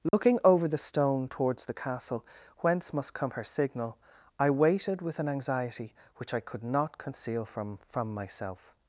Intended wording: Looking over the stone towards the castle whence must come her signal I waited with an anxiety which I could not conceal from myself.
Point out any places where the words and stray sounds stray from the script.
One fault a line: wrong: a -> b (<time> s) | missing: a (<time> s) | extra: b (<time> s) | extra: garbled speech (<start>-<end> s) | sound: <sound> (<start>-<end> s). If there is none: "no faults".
sound: dropout (0.1-0.1 s)
extra: from (7.9 s)